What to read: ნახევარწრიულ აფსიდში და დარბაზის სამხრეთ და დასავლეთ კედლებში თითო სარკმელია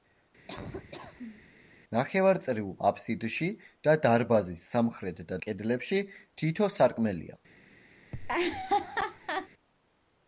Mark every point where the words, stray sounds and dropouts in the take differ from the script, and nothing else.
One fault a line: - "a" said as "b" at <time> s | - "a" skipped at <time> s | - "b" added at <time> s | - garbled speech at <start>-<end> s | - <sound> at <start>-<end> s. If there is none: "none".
- laugh at 0.5-1.5 s
- "დასავლეთ" skipped at 5.4 s
- laugh at 8.1-9.5 s